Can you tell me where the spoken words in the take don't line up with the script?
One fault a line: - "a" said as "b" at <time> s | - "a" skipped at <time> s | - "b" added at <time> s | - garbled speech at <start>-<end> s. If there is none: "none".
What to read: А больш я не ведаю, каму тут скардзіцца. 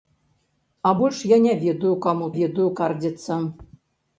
- "тут" said as "ведаю" at 2.4 s